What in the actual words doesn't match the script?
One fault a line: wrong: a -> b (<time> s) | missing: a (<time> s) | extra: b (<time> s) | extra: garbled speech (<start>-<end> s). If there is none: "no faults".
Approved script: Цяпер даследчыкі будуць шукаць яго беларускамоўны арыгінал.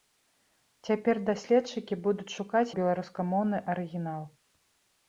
missing: яго (2.8 s)